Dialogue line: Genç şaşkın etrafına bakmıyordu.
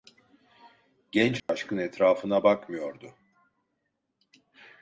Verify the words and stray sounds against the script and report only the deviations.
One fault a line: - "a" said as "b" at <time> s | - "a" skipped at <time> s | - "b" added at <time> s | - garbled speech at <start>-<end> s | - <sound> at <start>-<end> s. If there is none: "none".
- dropout at 1.4-1.5 s